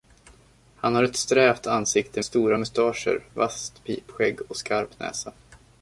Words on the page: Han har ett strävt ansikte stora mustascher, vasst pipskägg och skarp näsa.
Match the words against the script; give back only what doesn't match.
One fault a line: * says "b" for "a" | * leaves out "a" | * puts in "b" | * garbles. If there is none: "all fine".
all fine